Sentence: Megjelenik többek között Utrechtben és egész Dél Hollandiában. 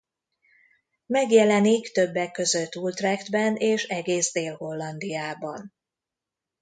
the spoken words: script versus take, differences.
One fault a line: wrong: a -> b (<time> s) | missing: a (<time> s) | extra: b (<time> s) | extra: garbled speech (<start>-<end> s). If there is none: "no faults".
no faults